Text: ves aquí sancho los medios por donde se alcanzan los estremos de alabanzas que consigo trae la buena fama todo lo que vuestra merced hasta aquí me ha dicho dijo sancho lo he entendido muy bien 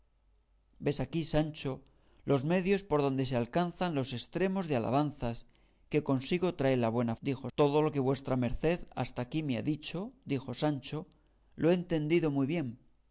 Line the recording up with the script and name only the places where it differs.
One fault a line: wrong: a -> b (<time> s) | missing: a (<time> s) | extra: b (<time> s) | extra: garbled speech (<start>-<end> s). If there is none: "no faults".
wrong: fama -> dijo (7.2 s)